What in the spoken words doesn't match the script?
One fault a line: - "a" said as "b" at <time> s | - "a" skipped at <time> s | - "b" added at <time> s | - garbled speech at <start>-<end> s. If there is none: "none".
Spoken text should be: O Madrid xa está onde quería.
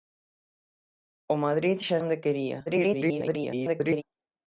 - "está" skipped at 2.0 s
- garbled speech at 2.7-4.0 s